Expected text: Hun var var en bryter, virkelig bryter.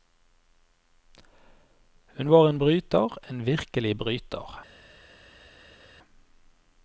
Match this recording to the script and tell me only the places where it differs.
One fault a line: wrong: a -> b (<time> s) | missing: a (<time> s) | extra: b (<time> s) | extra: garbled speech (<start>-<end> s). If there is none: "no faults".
missing: var (2.5 s)
extra: en (3.3 s)